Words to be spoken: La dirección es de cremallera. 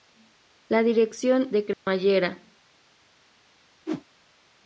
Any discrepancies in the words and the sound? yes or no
yes